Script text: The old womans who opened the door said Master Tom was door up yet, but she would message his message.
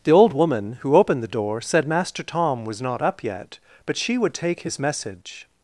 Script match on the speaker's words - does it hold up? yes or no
no